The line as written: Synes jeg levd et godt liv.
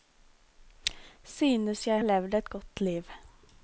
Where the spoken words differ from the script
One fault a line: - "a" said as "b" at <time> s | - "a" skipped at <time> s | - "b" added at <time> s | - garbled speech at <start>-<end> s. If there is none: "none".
none